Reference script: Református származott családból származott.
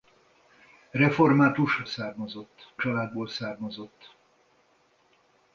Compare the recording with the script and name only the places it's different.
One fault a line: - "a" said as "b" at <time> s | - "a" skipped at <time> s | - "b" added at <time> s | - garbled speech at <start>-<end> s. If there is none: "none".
none